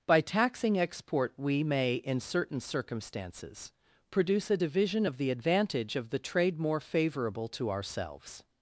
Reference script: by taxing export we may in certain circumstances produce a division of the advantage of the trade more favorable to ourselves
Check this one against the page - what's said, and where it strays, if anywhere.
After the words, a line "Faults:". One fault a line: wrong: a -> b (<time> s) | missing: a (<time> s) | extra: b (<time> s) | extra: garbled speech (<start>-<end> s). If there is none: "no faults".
by taxing export we may in certain circumstances produce a division of the advantage of the trade more favorable to ourselves
Faults:
no faults